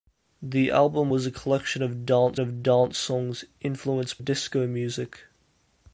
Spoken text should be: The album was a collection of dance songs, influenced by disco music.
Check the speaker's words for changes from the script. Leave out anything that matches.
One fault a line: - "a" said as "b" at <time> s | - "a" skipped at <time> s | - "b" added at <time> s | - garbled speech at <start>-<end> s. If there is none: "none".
- "of dance" added at 2.4 s
- "by" skipped at 4.2 s